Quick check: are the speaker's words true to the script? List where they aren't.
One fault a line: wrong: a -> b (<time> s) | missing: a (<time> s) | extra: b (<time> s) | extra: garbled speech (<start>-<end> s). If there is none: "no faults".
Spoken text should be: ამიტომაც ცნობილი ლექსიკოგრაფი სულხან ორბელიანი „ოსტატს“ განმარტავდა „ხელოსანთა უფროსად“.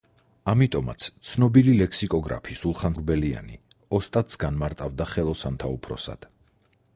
no faults